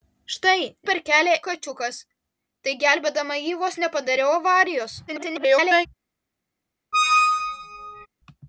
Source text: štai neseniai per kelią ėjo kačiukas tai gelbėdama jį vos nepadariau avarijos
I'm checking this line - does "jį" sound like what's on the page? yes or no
yes